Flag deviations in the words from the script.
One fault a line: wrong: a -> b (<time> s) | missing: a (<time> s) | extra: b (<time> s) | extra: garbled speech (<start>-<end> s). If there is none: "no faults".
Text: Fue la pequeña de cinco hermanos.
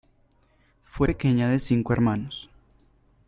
missing: la (1.1 s)